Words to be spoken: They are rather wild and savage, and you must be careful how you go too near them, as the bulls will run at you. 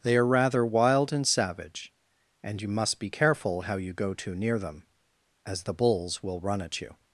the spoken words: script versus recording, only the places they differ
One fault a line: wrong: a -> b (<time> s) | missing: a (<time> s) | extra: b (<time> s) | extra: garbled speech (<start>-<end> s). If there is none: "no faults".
no faults